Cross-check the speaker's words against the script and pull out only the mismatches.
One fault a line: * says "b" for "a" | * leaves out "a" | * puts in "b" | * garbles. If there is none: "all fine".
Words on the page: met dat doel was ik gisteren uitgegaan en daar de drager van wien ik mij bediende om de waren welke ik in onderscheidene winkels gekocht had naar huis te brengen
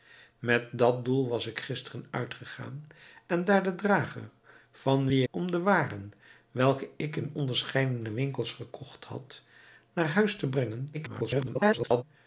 * leaves out "ik mij bediende"
* garbles